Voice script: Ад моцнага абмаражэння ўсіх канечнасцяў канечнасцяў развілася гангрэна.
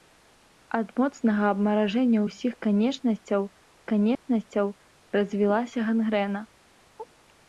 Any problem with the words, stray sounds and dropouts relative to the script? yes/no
yes